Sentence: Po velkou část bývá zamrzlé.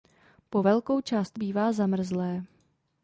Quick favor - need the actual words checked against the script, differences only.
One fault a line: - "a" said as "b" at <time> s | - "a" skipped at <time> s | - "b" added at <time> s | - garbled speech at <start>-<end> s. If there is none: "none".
none